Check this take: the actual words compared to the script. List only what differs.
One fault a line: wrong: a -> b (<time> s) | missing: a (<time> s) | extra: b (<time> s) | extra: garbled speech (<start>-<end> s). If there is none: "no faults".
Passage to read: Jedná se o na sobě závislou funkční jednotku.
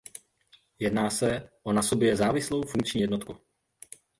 no faults